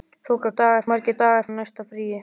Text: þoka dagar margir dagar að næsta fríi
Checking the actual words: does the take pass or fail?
pass